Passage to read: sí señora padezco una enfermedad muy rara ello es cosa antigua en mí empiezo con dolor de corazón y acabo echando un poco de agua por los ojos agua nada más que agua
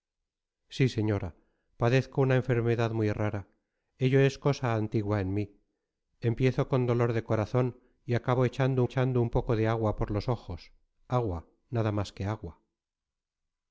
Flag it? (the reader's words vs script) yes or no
yes